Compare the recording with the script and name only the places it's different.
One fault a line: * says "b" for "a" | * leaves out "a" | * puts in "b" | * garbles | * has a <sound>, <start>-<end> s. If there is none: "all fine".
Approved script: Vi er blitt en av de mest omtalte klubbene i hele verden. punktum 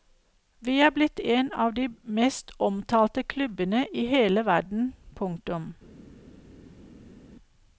all fine